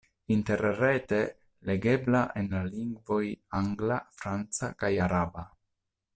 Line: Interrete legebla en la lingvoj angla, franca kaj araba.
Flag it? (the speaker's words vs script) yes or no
no